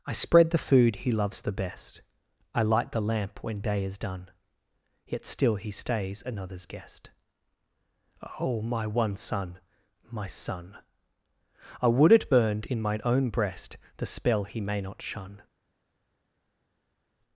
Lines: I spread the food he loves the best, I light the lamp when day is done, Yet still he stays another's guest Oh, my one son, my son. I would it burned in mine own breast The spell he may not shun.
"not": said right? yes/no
yes